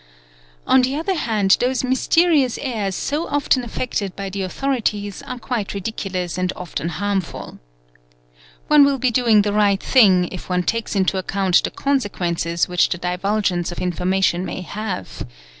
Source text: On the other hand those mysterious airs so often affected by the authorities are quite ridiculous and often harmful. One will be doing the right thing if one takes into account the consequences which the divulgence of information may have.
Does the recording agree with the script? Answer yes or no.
yes